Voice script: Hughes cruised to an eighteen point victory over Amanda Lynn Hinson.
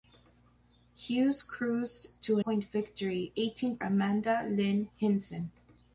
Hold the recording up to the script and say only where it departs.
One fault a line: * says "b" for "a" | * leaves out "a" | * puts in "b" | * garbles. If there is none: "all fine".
* leaves out "an eighteen"
* says "eighteen" for "over"